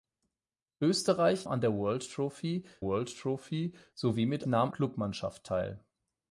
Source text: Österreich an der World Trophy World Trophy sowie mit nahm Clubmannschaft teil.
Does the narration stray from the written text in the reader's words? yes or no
no